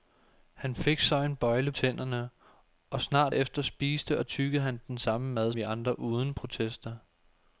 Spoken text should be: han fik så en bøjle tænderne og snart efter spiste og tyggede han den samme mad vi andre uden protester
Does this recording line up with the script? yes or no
yes